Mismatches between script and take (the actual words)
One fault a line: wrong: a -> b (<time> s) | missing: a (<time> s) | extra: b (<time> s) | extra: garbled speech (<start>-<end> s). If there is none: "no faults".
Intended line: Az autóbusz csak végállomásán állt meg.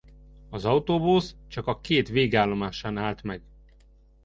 extra: a két (1.7 s)